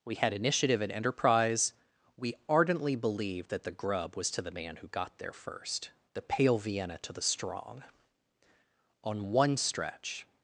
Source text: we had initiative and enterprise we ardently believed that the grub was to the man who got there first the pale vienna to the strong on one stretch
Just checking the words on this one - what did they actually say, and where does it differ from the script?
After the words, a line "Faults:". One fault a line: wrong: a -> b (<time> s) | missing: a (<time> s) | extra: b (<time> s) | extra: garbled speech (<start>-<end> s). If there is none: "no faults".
we had initiative and enterprise we ardently believed that the grub was to the man who got there first the pale vienna to the strong on one stretch
Faults:
no faults